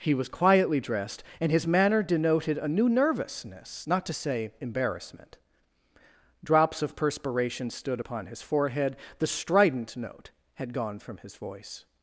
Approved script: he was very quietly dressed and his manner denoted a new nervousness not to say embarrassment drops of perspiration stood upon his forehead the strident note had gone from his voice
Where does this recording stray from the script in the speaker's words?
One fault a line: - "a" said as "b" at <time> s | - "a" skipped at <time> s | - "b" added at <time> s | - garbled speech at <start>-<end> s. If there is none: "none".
- "very" skipped at 0.3 s